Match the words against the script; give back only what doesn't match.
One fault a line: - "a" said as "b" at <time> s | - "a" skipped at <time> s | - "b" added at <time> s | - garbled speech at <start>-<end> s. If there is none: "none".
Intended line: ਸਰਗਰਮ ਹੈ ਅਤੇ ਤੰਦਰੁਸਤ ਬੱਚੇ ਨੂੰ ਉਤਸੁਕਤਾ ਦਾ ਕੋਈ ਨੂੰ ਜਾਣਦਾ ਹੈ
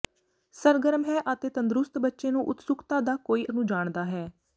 none